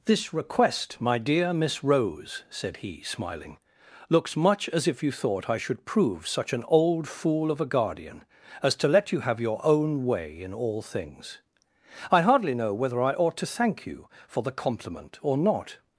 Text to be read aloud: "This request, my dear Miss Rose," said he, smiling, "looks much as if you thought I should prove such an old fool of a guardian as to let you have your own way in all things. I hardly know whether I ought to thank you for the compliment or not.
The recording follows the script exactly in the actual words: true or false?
true